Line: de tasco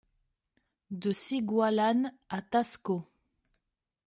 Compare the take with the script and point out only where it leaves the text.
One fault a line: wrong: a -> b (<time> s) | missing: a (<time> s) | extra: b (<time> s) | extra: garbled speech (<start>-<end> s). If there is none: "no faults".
extra: cigualan à (1.1 s)